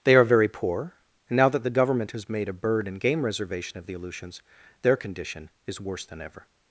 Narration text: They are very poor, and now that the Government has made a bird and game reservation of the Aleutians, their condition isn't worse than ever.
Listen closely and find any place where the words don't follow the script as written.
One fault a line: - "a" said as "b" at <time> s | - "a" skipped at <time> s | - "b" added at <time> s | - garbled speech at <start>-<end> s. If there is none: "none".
- "isn't" said as "is" at 5.7 s